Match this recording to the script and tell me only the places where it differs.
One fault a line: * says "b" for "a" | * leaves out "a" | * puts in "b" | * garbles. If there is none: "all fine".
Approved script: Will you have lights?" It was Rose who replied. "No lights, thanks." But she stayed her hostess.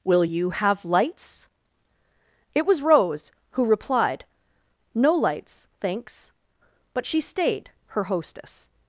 all fine